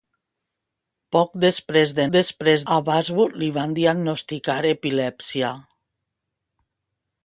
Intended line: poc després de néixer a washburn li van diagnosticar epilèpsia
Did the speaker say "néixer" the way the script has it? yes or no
no